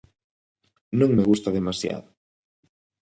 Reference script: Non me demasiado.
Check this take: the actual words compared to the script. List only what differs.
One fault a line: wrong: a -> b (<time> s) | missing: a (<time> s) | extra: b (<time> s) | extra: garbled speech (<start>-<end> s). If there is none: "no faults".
extra: gusta (1.3 s)